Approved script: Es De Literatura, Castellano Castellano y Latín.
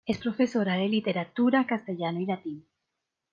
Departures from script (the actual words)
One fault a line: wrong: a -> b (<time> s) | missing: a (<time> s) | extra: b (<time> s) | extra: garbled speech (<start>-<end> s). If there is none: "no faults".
extra: Profesora (0.2 s)
missing: Castellano (2.2 s)